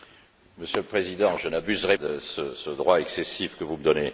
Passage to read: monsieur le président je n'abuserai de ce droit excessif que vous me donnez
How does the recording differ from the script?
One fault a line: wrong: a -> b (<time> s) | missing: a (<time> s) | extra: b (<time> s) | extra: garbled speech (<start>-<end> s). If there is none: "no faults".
no faults